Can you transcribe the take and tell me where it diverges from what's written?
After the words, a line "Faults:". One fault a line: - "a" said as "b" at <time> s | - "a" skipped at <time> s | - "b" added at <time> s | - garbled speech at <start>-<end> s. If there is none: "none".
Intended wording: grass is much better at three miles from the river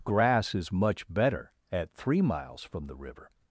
grass is much better at three miles from the river
Faults:
none